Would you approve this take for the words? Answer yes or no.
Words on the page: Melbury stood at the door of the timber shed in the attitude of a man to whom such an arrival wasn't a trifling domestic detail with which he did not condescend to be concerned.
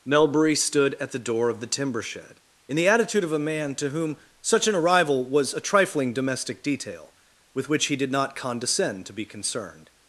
no